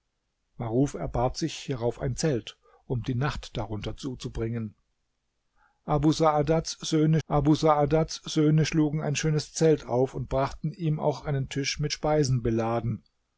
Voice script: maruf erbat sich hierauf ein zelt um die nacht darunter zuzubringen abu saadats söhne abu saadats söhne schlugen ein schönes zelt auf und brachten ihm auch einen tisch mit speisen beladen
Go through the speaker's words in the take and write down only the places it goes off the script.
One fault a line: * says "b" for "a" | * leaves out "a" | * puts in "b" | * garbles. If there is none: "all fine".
all fine